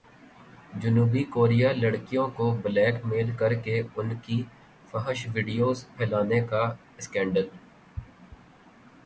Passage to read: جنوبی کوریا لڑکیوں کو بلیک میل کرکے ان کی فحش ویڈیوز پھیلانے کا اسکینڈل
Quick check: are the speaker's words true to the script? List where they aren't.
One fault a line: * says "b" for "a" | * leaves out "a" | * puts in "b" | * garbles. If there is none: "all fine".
all fine